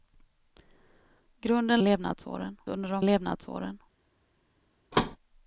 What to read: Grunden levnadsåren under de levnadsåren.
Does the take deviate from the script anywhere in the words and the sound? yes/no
yes